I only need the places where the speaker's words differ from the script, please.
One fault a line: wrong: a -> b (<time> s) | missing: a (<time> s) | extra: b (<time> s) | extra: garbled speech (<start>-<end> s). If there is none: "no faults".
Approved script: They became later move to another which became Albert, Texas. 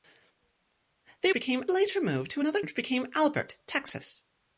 no faults